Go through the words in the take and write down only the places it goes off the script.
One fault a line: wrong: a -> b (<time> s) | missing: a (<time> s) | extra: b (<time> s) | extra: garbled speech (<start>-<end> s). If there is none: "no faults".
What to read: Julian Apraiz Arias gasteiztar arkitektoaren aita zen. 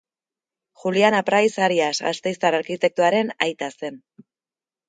no faults